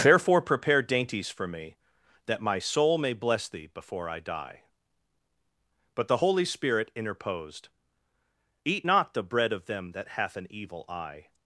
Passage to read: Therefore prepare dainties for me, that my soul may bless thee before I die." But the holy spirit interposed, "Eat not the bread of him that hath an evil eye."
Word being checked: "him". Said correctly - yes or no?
no